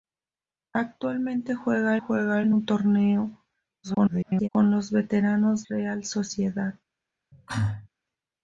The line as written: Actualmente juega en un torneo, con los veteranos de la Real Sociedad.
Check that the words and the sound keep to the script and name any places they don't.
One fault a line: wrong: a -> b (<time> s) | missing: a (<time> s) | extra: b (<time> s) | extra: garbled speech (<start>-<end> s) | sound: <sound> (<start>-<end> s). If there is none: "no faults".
extra: juega (2.0 s)
extra: garbled speech (3.8-4.5 s)
missing: de la (5.6 s)
sound: cough (7.3-7.9 s)